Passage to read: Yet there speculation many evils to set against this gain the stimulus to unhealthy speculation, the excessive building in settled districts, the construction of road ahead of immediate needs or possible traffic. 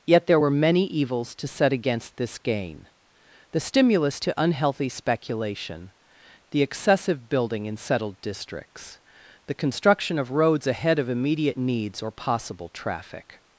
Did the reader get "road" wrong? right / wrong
wrong